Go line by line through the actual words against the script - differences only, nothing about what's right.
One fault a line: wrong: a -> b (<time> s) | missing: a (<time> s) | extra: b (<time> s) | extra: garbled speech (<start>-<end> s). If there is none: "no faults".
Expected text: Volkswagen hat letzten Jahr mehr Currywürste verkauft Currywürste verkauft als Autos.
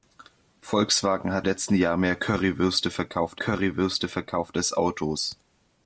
no faults